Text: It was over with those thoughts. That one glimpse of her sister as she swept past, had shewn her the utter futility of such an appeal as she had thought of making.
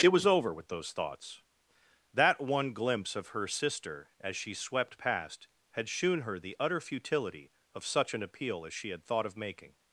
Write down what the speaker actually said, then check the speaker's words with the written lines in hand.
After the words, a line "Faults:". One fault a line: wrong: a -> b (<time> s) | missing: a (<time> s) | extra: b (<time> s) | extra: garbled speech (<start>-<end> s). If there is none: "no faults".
It was over with those thoughts. That one glimpse of her sister as she swept past, had shewn her the utter futility of such an appeal as she had thought of making.
Faults:
no faults